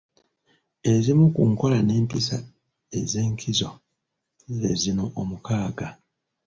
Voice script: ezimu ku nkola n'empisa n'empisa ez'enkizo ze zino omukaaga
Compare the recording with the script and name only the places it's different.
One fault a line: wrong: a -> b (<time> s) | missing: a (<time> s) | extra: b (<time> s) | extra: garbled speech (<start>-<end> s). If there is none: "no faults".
missing: n'empisa (2.4 s)